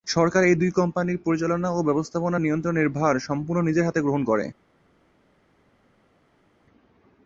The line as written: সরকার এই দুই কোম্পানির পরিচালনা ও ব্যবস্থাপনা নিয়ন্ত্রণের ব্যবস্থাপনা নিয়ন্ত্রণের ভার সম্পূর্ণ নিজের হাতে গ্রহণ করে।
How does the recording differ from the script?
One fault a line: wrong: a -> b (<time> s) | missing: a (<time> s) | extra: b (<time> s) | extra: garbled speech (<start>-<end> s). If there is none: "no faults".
missing: ব্যবস্থাপনা নিয়ন্ত্রণের (2.9 s)